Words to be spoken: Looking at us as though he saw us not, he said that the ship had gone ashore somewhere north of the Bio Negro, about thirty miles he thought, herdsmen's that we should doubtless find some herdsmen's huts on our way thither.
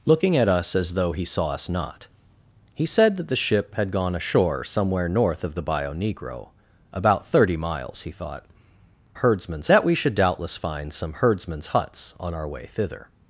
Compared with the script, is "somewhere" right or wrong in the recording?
right